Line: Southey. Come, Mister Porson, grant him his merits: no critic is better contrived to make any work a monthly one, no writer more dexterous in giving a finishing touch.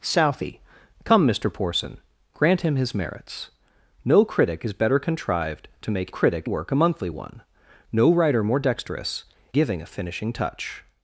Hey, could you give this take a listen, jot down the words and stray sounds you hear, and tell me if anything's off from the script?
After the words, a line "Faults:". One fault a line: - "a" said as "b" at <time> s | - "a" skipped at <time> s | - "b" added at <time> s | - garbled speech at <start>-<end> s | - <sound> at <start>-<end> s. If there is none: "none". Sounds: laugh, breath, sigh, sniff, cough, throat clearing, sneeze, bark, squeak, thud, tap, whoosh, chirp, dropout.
Southey. Come, Mister Porson, grant him his merits: no critic is better contrived to make critic work a monthly one, no writer more dexterous giving a finishing touch.
Faults:
- "any" said as "critic" at 6.1 s
- "in" skipped at 9.2 s